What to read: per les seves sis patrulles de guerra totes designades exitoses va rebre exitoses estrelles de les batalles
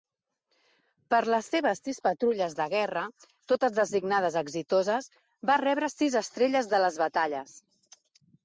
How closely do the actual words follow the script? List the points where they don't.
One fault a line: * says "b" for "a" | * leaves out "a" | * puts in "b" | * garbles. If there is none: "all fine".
* says "sis" for "exitoses"